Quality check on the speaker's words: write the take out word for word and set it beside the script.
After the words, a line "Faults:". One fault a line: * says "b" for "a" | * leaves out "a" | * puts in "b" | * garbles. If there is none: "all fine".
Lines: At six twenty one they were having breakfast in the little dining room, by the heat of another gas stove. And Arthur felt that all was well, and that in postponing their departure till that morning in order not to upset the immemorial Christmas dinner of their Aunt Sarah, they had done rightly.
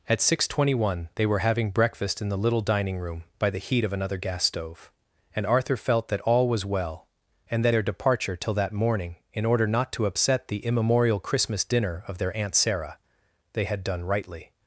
At six twenty one they were having breakfast in the little dining room, by the heat of another gas stove. And Arthur felt that all was well, and that their departure till that morning in order not to upset the immemorial Christmas dinner of their Aunt Sarah, they had done rightly.
Faults:
* leaves out "in postponing"